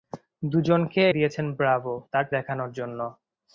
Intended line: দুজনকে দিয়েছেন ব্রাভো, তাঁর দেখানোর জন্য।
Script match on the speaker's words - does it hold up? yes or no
yes